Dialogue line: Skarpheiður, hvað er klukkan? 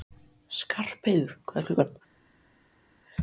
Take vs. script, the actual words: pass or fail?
pass